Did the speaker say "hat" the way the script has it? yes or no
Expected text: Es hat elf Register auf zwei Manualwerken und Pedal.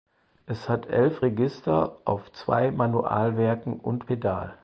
yes